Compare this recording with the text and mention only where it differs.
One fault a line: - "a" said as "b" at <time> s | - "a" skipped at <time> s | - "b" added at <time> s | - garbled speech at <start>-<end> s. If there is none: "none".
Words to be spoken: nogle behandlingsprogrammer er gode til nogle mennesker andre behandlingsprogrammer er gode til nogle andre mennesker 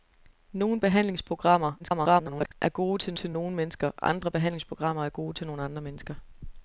- garbled speech at 1.8-2.5 s
- "til" added at 3.2 s